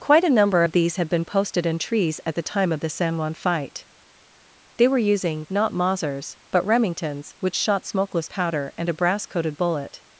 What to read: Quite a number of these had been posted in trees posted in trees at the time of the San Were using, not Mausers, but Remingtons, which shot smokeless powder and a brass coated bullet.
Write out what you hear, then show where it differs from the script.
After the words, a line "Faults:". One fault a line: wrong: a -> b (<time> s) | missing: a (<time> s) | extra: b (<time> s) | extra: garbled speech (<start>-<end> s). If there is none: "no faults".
Quite a number of these had been posted in trees at the time of the San Juan fight. They were using, not Mausers, but Remingtons, which shot smokeless powder and a brass coated bullet.
Faults:
missing: posted in trees (2.2 s)
extra: Juan fight They (3.2 s)